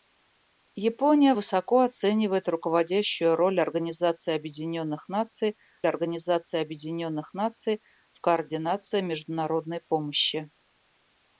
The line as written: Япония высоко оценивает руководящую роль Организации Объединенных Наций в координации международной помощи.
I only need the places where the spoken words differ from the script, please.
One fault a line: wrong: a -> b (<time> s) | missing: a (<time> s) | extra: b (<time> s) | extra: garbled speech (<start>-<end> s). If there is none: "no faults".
extra: Организации Объединенных Наций (5.9 s)